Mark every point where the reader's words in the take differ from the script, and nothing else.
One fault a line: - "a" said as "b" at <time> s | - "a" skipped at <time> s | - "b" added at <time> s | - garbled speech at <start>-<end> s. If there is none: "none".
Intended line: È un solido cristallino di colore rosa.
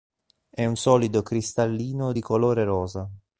none